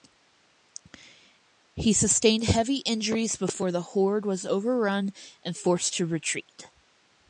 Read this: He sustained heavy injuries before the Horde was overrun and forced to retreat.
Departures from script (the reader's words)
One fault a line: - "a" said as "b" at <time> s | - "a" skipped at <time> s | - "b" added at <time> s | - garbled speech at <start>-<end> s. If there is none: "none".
none